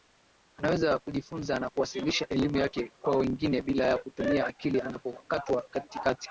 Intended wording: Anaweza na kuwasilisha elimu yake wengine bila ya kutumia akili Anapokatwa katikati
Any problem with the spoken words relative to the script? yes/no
yes